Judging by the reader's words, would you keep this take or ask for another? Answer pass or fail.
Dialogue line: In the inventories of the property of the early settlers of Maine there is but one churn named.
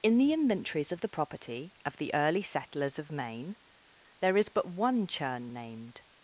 pass